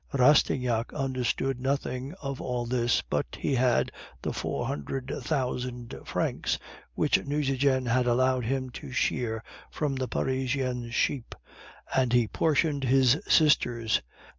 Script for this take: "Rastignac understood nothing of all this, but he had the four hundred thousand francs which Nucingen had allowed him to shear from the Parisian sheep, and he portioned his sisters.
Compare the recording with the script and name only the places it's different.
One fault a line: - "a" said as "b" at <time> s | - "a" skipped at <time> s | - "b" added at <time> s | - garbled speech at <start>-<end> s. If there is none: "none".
none